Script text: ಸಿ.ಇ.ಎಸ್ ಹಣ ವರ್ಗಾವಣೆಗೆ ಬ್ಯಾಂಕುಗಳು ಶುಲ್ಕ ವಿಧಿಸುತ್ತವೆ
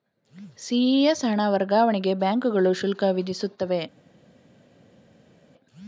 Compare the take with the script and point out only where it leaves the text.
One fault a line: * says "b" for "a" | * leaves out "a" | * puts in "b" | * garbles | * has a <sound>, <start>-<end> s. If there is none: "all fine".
all fine